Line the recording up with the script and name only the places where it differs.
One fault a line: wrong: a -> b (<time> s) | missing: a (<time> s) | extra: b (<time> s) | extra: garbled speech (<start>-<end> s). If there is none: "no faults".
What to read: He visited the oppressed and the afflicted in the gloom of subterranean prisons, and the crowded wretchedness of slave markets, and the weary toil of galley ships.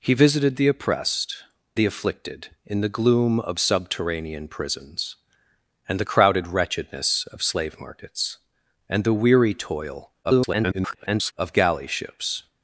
missing: and (1.4 s)
extra: garbled speech (10.2-11.3 s)